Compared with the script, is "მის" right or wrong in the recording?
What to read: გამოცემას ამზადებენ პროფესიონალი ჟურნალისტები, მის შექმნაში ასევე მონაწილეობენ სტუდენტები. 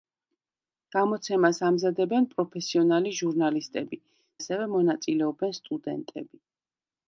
wrong